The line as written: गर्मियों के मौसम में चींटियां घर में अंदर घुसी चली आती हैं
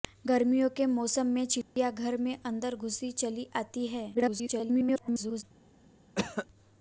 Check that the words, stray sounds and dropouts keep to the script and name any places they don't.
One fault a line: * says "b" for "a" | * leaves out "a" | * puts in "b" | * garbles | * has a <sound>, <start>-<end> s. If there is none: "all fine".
* has a dropout, 1.6-1.8 s
* garbles
* has a cough, 6.1-6.5 s